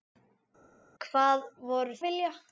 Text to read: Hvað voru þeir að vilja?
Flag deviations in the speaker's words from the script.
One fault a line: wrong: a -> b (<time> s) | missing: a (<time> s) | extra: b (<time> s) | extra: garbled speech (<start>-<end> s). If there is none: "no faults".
missing: þeir (2.0 s)